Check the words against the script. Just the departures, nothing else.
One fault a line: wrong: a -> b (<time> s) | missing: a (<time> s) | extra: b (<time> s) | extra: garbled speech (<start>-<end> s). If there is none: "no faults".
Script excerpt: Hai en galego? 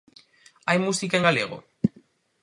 extra: música (0.8 s)